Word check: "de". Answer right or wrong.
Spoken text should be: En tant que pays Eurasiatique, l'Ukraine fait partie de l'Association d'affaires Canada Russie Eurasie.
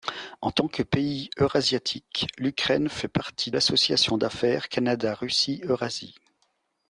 wrong